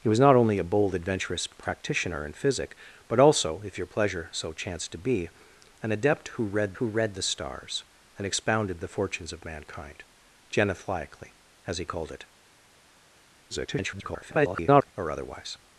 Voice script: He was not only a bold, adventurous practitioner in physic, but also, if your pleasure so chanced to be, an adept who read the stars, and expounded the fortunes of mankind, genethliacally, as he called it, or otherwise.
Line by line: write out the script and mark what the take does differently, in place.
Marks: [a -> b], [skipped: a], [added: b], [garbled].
He was not only a bold, adventurous practitioner in physic, but also, if your pleasure so chanced to be, an adept who read [added: who read] the stars, and expounded the fortunes of mankind, genethliacally, as he called it, [garbled] or otherwise.